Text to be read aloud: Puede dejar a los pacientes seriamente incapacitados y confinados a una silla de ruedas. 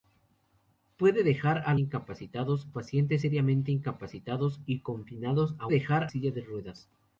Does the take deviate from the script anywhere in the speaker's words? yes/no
yes